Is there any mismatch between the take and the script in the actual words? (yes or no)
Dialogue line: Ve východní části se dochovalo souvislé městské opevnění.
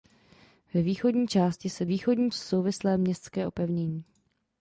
yes